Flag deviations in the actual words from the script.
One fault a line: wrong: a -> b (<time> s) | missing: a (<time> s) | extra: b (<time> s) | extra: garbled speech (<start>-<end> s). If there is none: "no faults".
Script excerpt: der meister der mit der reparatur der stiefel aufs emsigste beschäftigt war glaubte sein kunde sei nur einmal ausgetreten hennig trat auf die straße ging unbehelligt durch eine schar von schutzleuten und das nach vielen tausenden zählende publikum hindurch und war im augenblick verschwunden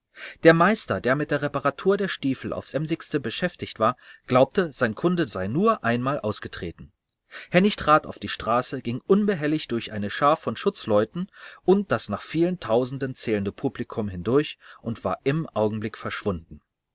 no faults